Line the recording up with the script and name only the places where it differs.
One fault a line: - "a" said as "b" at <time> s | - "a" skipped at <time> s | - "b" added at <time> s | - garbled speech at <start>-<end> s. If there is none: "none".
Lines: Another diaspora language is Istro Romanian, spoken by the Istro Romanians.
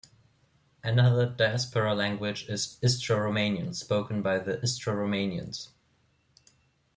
none